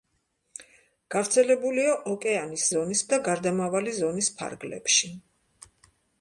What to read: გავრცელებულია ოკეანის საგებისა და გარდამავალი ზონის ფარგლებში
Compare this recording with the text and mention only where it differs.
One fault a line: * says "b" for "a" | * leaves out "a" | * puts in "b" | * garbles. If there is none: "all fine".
* says "ზონის" for "საგებისა"